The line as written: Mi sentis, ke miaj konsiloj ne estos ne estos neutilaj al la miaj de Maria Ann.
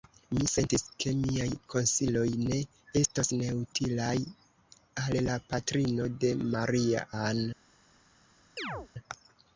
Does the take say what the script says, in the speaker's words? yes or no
no